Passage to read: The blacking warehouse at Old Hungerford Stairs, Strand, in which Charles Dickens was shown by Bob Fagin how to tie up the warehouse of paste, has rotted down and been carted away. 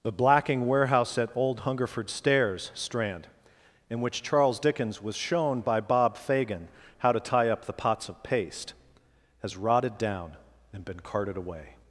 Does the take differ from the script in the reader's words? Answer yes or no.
yes